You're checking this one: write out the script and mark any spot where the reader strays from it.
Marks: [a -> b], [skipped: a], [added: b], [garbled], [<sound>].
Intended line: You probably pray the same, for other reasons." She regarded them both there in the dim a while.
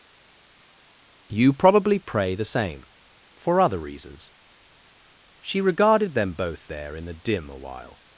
You probably pray the same, for other reasons." She regarded them both there in the dim a while.